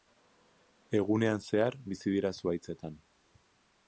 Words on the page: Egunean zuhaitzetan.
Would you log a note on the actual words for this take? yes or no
yes